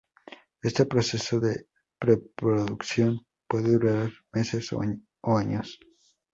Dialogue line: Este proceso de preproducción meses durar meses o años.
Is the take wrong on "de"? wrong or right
right